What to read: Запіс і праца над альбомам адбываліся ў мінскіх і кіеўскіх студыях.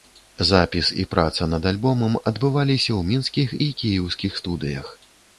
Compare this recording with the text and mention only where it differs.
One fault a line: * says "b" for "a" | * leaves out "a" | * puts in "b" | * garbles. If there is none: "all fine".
all fine